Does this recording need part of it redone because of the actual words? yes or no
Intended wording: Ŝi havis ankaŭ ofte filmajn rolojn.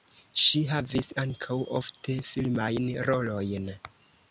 no